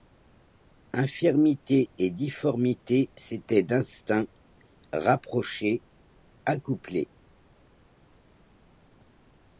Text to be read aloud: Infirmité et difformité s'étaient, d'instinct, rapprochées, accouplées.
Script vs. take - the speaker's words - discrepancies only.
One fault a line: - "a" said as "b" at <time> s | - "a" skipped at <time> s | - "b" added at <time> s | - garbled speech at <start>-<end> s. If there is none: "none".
none